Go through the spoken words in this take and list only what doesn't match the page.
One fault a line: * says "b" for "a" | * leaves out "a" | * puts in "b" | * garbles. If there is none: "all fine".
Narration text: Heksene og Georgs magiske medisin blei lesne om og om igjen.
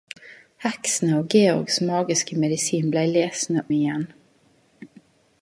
* leaves out "om og om"